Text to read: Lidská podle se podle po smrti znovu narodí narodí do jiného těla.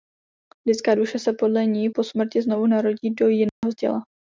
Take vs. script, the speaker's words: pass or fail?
fail